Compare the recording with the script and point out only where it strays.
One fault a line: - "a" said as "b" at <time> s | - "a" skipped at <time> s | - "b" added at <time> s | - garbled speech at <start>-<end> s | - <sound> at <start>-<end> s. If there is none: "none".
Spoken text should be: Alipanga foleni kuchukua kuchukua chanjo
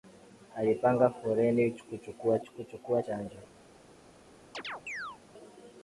- chirp at 4.5-5.2 s